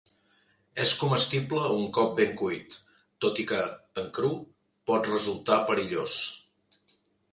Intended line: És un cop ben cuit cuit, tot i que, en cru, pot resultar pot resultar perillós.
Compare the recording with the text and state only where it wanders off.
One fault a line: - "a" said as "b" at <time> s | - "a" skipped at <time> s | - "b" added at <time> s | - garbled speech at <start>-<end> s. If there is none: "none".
- "comestible" added at 1.0 s
- "cuit" skipped at 2.7 s
- "pot resultar" skipped at 5.6 s